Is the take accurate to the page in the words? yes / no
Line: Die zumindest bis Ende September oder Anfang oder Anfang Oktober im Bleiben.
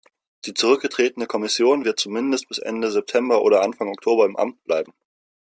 no